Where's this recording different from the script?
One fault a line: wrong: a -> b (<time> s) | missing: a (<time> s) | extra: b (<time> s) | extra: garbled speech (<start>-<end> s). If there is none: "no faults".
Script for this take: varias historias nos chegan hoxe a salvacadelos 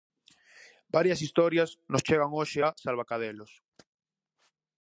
no faults